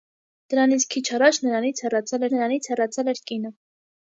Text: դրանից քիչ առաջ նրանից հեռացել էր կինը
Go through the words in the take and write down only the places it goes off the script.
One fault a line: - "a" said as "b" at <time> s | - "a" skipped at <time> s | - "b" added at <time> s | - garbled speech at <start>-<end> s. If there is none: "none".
- "նրանից հեռացել" added at 2.3 s